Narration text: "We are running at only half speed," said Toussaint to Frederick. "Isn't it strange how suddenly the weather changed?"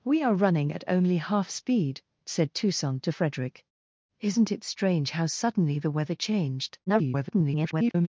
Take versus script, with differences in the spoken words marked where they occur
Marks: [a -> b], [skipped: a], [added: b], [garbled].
"We are running at only half speed," said Toussaint to Frederick. "Isn't it strange how suddenly the weather changed?" [garbled]